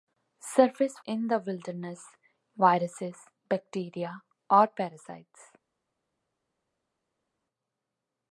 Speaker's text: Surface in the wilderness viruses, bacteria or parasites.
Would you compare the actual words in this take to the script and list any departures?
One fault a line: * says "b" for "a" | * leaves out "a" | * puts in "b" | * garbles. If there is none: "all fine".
all fine